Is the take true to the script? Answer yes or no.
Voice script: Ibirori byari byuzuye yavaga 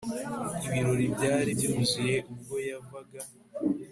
no